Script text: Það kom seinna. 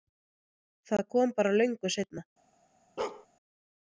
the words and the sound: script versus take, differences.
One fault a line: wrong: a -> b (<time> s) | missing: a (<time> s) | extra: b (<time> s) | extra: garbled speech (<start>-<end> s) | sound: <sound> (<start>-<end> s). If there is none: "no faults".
extra: bara löngu (1.4 s)
sound: bark (3.0-3.3 s)